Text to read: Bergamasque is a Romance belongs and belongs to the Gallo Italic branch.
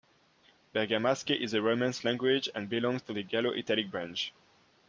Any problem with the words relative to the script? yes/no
yes